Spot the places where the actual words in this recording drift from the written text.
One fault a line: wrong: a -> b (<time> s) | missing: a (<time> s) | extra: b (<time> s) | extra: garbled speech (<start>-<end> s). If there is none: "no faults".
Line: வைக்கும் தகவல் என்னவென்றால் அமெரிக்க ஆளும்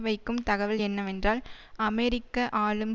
no faults